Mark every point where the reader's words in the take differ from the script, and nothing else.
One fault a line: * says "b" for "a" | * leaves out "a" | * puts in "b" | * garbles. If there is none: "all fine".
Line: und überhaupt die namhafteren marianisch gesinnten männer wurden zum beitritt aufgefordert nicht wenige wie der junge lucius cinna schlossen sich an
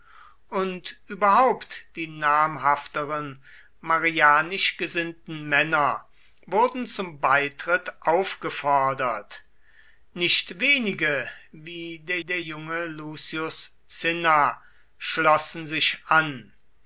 * puts in "der"